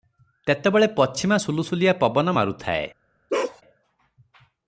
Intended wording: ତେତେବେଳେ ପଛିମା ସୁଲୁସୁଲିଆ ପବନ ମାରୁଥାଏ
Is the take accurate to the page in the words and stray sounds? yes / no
no